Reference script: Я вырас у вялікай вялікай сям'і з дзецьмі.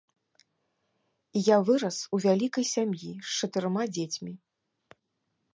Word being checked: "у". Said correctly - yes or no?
yes